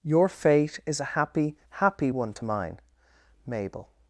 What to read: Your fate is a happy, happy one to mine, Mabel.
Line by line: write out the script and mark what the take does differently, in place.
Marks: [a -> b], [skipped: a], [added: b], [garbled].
Your fate is a happy, happy one to mine, Mabel.